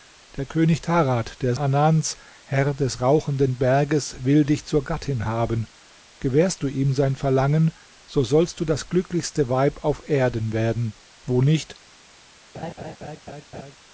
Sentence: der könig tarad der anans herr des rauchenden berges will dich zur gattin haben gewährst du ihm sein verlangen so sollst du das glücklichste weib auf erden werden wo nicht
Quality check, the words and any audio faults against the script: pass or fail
fail